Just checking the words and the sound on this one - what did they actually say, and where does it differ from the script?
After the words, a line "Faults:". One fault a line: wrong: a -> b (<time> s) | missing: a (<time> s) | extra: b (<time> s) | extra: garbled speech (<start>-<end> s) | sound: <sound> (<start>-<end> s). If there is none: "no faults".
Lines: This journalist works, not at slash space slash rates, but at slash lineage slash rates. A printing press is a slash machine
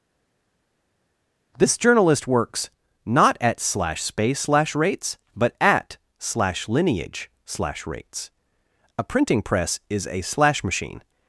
This journalist works, not at slash space slash rates, but at slash lineage slash rates. A printing press is a slash machine
Faults:
no faults